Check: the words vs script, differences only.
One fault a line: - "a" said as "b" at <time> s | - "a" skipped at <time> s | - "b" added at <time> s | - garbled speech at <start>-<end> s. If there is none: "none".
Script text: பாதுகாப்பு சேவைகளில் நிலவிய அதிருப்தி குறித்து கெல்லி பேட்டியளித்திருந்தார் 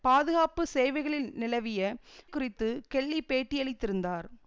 - "அதிருப்தி" skipped at 1.8 s